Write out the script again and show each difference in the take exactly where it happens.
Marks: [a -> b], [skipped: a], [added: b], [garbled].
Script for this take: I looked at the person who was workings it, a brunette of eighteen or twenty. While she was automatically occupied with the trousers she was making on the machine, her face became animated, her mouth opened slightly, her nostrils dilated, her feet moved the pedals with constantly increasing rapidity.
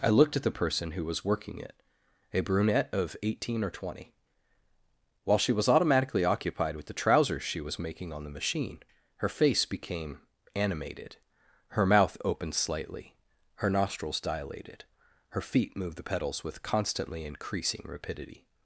I looked at the person who was [workings -> working] it, a brunette of eighteen or twenty. While she was automatically occupied with the trousers she was making on the machine, her face became animated, her mouth opened slightly, her nostrils dilated, her feet moved the pedals with constantly increasing rapidity.